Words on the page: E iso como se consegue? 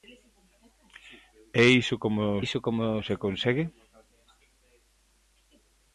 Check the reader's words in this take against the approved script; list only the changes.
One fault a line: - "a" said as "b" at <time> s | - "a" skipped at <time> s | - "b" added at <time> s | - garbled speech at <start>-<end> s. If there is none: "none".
- "iso como" added at 2.4 s